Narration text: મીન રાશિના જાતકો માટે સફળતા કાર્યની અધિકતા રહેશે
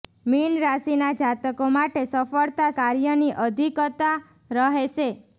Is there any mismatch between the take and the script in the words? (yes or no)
no